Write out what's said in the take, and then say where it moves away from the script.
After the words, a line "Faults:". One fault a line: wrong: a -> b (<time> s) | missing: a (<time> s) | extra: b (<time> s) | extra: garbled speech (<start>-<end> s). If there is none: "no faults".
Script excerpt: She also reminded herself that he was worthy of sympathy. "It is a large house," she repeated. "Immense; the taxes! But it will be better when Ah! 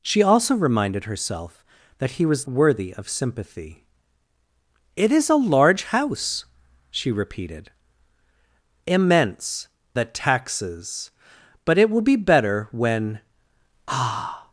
She also reminded herself that he was worthy of sympathy. "It is a large house," she repeated. "Immense; the taxes! But it will be better when Ah!
Faults:
no faults